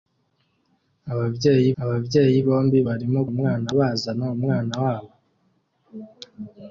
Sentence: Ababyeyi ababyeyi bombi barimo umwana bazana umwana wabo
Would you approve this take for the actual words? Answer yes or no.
yes